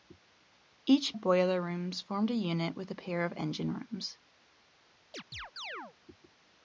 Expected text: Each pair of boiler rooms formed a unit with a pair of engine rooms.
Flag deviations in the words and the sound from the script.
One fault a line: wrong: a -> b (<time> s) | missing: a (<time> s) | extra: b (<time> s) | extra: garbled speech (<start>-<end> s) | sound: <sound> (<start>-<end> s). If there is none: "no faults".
missing: pair (1.1 s)
sound: chirp (5.1-6.0 s)